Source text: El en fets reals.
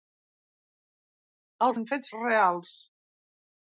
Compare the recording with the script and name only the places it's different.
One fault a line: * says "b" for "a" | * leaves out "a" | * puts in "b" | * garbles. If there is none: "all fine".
all fine